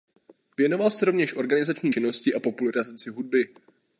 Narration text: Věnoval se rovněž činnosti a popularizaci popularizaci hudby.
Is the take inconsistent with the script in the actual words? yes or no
yes